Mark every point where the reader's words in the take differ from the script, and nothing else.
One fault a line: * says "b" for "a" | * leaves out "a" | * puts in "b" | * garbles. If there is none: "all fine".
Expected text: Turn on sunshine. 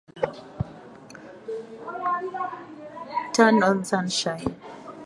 all fine